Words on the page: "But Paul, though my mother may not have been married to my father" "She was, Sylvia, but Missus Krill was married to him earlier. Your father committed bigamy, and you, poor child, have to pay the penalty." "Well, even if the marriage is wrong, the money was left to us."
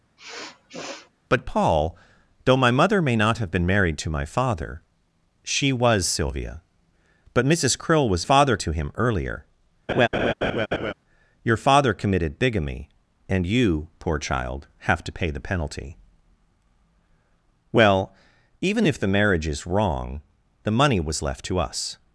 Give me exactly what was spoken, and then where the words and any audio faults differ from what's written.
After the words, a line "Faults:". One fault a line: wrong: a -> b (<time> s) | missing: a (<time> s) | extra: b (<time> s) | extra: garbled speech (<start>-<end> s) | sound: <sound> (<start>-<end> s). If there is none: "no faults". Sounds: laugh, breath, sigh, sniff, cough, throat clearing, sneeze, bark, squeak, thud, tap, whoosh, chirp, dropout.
"But Paul, though my mother may not have been married to my father" "She was, Sylvia, but Missus Krill was father to him earlier. Your father committed bigamy, and you, poor child, have to pay the penalty." "Well, even if the marriage is wrong, the money was left to us."
Faults:
sound: sniff (0.2-1.1 s)
wrong: married -> father (8.2 s)
sound: laugh (9.9-10.9 s)